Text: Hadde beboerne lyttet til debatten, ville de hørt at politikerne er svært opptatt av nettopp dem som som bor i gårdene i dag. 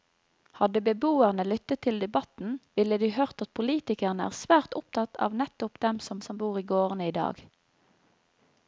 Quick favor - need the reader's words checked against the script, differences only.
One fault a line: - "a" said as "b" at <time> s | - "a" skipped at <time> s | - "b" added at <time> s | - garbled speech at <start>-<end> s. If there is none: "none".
none